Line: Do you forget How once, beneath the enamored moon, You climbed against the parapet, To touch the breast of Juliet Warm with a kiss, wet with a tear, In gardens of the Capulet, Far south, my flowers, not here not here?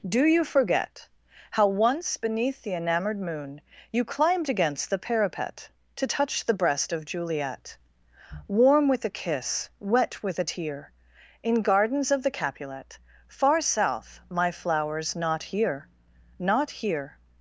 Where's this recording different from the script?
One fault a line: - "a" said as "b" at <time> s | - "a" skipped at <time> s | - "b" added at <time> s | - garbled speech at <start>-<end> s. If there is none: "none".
none